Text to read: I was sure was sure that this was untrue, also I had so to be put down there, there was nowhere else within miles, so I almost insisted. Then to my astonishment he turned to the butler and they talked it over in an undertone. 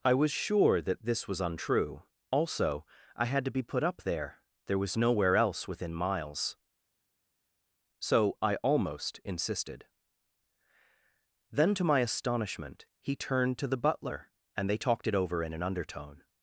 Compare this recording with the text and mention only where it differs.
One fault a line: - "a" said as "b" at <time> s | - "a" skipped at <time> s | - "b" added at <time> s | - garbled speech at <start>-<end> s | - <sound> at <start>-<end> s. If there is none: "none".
- "was sure" skipped at 0.8 s
- "so" skipped at 3.5 s
- "down" said as "up" at 3.8 s